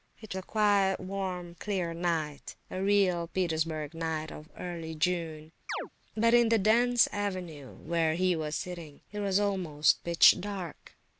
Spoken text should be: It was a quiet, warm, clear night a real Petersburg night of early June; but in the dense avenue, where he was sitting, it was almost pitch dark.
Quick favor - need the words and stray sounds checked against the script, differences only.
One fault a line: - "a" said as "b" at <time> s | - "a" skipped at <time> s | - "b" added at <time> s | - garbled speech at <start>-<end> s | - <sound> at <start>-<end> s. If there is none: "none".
- "was" skipped at 0.3 s
- chirp at 5.7-5.9 s